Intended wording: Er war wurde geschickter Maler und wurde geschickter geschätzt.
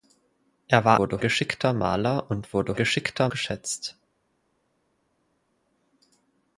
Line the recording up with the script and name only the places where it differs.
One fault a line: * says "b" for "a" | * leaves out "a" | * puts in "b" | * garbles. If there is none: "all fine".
all fine